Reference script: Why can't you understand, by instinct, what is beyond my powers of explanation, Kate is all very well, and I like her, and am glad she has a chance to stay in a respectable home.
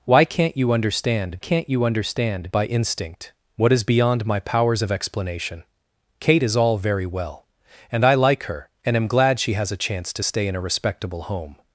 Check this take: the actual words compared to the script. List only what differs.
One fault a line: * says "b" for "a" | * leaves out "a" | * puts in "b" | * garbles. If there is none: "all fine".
* puts in "can't you understand"